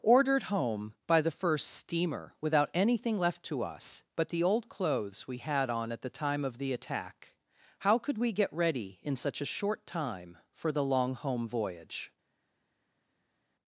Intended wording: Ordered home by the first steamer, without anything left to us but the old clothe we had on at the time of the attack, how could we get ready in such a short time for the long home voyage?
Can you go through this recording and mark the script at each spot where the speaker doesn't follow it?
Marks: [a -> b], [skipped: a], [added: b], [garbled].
Ordered home by the first steamer, without anything left to us but the old [clothe -> clothes] we had on at the time of the attack, how could we get ready in such a short time for the long home voyage?